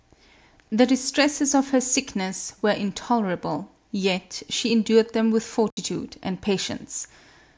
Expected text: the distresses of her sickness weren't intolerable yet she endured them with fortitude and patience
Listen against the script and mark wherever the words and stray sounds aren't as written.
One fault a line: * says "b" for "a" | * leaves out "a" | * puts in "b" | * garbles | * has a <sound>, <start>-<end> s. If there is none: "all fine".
* says "were" for "weren't"
* has a dropout, 5.7-5.8 s